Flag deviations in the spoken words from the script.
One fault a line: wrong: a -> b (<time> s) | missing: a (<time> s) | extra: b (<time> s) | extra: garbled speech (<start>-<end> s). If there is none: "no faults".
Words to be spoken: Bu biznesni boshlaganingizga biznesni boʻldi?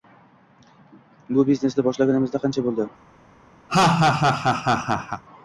wrong: biznesni -> qancha (2.5 s)